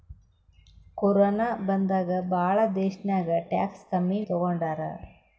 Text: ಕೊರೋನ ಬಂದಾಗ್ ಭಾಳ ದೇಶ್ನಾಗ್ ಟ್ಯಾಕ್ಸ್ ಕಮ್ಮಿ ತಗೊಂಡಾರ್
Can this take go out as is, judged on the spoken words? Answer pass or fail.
pass